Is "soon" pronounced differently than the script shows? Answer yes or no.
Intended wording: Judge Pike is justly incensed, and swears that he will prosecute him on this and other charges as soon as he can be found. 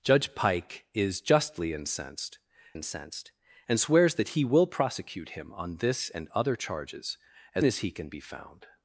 yes